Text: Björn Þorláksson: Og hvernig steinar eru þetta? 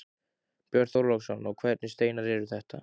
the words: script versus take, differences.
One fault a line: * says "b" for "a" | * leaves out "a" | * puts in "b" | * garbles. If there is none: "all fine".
all fine